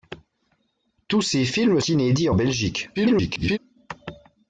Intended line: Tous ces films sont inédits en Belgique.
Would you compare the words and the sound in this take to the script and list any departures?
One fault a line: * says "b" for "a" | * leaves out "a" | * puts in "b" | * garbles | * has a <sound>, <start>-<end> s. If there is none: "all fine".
* leaves out "sont"
* garbles